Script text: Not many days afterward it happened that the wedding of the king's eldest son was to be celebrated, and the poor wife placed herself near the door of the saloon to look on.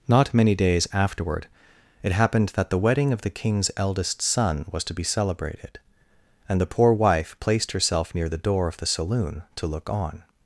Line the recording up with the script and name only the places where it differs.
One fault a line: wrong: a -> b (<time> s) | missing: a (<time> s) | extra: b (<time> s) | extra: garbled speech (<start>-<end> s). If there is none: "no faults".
no faults